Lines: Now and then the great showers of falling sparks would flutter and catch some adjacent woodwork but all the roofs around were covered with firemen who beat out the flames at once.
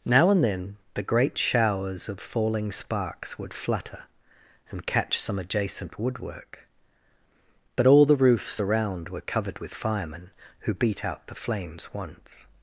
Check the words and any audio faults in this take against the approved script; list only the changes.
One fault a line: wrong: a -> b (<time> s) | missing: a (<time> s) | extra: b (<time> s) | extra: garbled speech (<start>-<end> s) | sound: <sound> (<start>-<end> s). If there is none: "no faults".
missing: at (11.9 s)